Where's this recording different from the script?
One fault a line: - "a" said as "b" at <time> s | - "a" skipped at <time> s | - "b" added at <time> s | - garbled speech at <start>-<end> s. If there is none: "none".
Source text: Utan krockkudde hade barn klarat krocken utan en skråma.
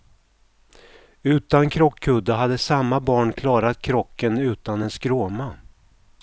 - "samma" added at 2.6 s